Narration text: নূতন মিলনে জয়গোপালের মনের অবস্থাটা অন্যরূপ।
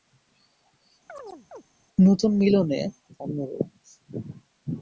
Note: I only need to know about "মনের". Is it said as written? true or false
false